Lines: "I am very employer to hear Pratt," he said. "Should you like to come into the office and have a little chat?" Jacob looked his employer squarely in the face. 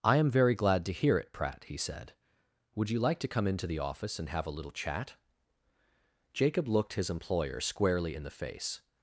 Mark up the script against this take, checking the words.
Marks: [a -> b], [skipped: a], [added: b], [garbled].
"I am very [employer -> glad] to hear [added: it] Pratt," he said. ["Should -> Would] you like to come into the office and have a little chat?" Jacob looked his employer squarely in the face.